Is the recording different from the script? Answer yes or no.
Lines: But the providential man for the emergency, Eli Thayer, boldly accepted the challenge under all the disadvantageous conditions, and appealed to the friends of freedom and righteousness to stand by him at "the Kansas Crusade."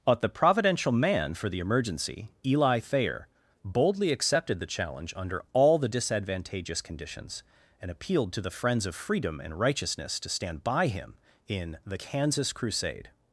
yes